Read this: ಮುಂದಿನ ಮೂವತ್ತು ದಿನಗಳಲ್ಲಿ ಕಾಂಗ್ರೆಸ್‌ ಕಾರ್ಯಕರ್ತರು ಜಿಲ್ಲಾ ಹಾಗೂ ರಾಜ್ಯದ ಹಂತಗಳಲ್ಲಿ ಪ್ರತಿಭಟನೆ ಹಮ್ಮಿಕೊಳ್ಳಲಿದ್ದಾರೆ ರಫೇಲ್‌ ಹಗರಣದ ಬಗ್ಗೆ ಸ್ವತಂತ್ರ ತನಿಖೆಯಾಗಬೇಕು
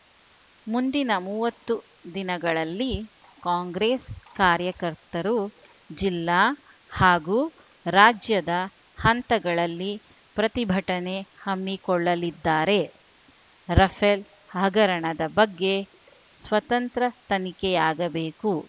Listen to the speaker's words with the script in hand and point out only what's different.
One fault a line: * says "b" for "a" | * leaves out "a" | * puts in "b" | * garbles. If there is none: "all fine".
all fine